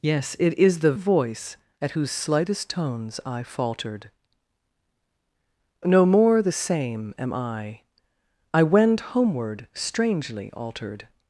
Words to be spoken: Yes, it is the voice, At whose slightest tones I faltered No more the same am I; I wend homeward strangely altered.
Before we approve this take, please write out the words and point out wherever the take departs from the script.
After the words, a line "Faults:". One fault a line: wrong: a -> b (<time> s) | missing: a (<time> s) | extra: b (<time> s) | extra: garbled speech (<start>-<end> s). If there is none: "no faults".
Yes, it is the voice, At whose slightest tones I faltered No more the same am I; I wend homeward strangely altered.
Faults:
no faults